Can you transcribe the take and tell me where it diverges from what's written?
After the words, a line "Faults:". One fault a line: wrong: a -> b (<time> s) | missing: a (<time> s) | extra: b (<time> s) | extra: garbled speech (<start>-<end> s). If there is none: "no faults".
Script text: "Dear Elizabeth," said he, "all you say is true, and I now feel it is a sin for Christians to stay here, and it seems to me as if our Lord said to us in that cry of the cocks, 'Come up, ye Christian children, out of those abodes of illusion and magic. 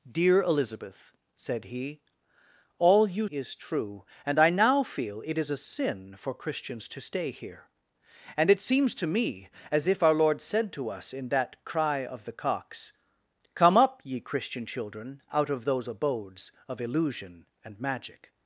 "Dear Elizabeth," said he, "all you is true, and I now feel it is a sin for Christians to stay here, and it seems to me as if our Lord said to us in that cry of the cocks, 'Come up, ye Christian children, out of those abodes of illusion and magic.
Faults:
missing: say (3.3 s)